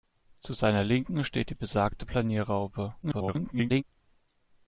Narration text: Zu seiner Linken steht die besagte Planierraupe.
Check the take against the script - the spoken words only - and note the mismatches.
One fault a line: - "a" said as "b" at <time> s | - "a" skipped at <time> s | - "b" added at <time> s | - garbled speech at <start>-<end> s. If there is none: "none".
- garbled speech at 3.0-3.8 s